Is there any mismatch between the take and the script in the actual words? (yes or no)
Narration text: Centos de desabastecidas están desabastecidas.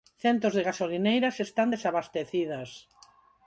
yes